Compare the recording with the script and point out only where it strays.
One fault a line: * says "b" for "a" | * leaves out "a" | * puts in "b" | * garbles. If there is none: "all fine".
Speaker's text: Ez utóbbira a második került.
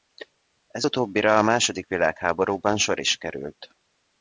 * puts in "világháborúban sor is"